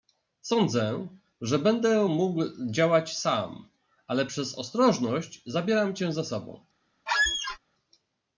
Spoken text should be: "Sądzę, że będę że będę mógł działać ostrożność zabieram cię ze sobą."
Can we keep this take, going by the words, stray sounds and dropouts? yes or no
no